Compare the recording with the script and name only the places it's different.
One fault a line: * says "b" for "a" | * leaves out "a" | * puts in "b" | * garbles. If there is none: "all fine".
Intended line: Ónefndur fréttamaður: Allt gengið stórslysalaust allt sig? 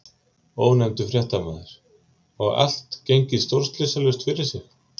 * puts in "Og"
* says "fyrir" for "allt"